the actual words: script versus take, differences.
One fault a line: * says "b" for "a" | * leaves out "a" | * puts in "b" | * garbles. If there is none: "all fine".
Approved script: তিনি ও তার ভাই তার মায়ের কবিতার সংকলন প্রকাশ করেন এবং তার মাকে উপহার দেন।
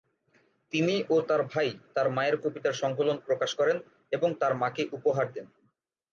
all fine